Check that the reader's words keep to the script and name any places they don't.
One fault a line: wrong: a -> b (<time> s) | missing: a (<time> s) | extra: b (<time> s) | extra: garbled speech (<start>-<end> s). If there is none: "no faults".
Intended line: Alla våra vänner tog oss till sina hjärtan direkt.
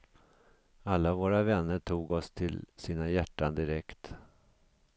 no faults